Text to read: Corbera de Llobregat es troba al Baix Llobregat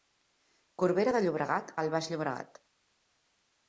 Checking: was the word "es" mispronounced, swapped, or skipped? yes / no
yes